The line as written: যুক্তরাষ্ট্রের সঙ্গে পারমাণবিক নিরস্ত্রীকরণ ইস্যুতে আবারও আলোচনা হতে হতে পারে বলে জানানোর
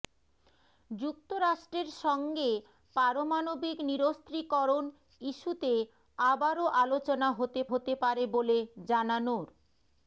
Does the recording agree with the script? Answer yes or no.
yes